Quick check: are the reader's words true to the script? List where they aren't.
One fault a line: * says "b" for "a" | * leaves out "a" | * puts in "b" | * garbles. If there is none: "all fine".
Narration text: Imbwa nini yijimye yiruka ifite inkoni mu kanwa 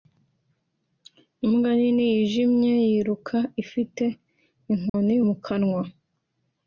all fine